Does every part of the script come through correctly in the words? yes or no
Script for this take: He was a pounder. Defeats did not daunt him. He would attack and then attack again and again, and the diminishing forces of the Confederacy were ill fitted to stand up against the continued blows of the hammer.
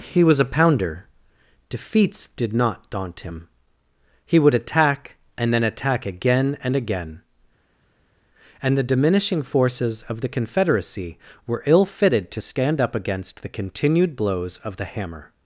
yes